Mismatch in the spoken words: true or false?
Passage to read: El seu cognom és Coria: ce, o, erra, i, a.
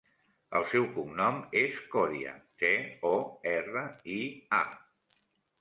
false